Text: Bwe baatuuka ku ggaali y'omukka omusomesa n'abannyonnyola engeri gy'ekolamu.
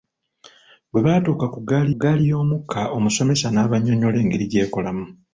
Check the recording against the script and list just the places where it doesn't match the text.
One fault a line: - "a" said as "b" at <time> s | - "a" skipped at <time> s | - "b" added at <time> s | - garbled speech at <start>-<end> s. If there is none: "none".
- "ggaali" added at 2.0 s